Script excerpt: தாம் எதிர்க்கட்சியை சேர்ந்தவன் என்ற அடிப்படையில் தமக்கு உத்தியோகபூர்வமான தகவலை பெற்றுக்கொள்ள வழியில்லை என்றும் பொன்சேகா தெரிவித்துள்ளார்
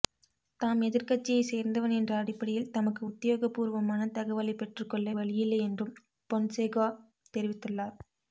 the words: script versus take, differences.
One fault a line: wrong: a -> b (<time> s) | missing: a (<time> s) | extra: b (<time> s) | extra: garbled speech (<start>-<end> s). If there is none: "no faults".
no faults